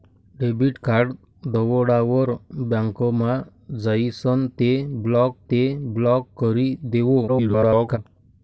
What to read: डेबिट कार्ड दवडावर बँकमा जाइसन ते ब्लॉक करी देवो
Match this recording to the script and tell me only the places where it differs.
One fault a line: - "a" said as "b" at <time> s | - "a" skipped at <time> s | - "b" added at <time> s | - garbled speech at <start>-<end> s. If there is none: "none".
- "ते ब्लॉक" added at 5.5 s
- garbled speech at 7.3-8.0 s